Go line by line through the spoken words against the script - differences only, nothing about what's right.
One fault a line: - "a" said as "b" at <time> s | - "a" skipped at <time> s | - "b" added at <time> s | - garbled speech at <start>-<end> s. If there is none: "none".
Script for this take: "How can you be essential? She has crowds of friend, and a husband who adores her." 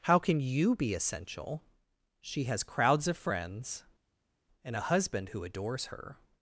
- "friend" said as "friends" at 3.1 s